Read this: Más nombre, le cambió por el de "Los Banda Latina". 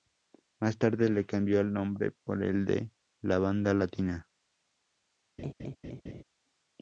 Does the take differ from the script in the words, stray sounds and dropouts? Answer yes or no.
yes